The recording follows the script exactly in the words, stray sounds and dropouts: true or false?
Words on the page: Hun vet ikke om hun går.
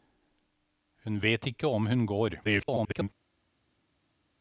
false